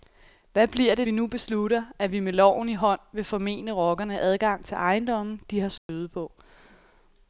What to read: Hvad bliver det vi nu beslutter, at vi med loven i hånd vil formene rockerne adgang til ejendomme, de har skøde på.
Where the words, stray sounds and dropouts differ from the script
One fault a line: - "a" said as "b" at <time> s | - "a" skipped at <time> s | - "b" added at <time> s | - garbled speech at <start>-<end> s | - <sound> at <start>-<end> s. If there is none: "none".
- dropout at 5.8-5.9 s